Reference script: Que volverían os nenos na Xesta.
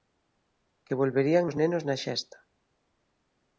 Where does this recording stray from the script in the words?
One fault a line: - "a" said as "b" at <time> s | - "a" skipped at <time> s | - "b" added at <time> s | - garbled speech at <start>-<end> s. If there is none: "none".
none